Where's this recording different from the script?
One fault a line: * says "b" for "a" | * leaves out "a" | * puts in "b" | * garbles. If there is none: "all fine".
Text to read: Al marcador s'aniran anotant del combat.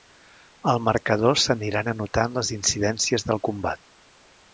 * puts in "les incidències"